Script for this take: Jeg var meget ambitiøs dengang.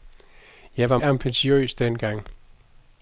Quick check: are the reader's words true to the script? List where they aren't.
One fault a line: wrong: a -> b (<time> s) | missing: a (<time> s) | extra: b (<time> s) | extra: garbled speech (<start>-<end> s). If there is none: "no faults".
missing: meget (1.0 s)